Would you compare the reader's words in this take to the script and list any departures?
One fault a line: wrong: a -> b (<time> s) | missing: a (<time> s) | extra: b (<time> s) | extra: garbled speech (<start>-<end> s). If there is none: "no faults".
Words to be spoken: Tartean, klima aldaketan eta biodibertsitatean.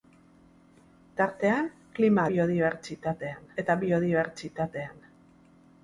wrong: aldaketan -> biodibertsitatean (2.3 s)